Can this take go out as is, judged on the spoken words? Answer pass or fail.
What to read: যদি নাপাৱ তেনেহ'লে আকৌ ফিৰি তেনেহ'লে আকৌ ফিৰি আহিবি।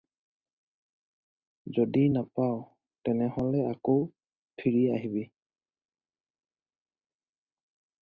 fail